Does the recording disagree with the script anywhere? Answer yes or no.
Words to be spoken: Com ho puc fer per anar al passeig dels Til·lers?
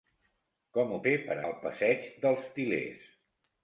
yes